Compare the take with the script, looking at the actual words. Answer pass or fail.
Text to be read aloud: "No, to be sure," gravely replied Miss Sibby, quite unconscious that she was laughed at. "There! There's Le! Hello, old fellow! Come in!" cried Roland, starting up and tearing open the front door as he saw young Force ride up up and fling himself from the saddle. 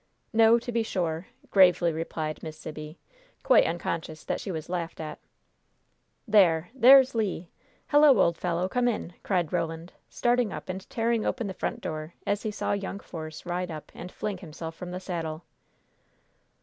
fail